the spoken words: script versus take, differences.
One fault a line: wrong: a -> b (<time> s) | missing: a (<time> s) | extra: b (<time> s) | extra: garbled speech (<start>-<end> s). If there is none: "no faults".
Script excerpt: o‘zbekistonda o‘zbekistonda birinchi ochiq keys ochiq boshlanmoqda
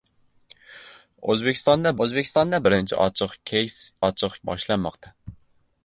no faults